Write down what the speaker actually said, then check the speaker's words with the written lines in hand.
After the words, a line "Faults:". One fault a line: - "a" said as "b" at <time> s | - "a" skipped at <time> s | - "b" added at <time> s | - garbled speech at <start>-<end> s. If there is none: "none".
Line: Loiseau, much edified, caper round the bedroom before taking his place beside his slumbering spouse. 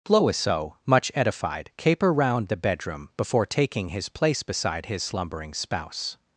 Loiseau, much edified, caper round the bedroom before taking his place beside his slumbering spouse.
Faults:
none